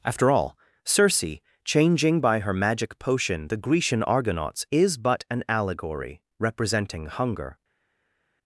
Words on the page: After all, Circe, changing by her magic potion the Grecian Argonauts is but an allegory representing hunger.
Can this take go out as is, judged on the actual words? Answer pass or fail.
pass